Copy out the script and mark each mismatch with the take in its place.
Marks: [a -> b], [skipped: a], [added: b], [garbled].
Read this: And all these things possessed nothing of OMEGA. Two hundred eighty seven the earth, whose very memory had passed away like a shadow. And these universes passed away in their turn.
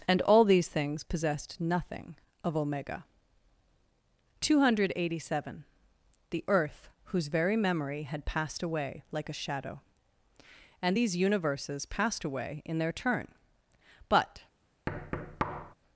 And all these things possessed nothing of OMEGA. Two hundred eighty seven the earth, whose very memory had passed away like a shadow. And these universes passed away in their turn. [added: But]